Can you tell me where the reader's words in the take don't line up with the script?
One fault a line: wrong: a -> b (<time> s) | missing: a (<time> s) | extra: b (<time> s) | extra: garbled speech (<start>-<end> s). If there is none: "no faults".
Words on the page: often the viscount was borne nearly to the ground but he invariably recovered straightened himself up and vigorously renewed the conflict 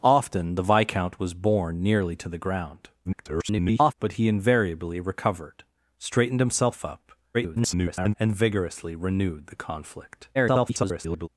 extra: garbled speech (3.0-3.9 s)
extra: garbled speech (7.3-8.1 s)
extra: garbled speech (10.3-11.3 s)